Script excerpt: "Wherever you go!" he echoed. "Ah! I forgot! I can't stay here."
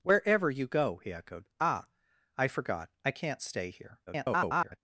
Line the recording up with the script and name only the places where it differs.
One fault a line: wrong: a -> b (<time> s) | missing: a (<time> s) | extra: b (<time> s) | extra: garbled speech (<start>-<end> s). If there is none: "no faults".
extra: garbled speech (4.1-4.8 s)